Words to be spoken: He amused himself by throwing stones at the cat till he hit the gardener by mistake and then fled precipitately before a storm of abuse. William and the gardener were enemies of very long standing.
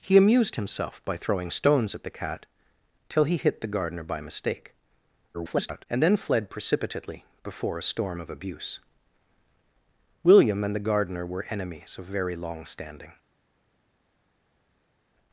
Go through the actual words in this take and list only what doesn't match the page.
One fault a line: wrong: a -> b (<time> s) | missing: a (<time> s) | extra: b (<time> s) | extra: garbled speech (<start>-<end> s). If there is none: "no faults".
extra: garbled speech (5.3-5.9 s)